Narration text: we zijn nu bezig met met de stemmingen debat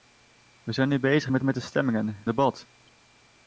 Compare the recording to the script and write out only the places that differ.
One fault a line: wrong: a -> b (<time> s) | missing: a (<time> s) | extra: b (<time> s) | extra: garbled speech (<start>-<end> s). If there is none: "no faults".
no faults